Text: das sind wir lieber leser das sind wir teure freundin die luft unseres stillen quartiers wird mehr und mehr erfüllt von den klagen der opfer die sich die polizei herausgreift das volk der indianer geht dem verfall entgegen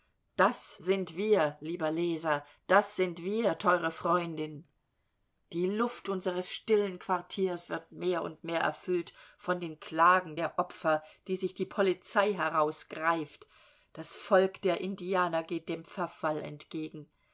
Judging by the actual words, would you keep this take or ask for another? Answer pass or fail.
pass